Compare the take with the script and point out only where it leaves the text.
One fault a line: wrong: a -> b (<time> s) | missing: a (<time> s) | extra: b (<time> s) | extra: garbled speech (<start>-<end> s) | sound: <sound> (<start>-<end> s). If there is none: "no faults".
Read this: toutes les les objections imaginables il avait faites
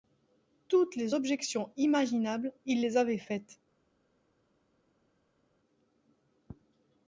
missing: les (1.1 s)
extra: les (2.8 s)